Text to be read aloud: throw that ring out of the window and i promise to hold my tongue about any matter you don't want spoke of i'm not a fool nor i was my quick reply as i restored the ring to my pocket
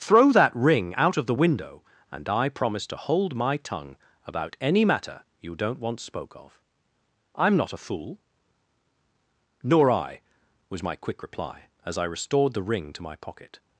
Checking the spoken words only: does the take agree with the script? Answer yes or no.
yes